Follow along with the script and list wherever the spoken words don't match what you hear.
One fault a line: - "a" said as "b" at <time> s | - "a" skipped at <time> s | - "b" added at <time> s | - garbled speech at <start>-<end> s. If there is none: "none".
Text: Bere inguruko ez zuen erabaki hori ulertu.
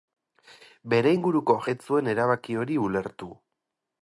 none